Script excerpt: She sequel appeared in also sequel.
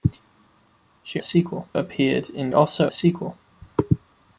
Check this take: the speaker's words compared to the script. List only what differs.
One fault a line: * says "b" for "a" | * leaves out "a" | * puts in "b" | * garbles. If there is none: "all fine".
all fine